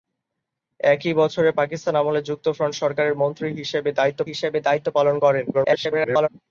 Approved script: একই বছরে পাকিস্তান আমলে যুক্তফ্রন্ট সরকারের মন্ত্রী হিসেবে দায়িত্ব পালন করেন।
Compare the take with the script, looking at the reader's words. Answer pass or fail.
fail